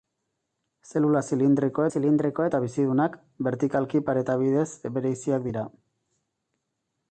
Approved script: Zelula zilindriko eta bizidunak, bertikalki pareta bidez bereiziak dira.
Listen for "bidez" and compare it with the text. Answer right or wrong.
right